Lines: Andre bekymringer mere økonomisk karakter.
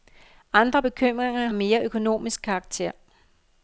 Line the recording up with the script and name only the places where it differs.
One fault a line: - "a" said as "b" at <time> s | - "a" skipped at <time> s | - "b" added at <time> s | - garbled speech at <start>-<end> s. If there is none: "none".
none